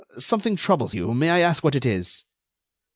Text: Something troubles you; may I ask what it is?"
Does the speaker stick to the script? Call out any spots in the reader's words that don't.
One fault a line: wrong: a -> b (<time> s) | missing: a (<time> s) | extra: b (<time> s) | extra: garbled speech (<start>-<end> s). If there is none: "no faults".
no faults